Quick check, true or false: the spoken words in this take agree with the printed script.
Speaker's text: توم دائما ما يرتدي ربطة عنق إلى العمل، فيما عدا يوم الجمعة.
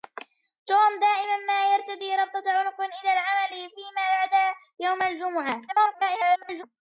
false